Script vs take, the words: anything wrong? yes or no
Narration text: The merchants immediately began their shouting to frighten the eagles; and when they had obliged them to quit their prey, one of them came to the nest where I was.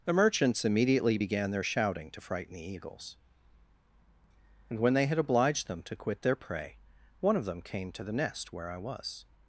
no